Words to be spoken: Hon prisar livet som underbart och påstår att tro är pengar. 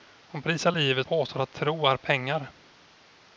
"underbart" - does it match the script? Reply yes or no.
no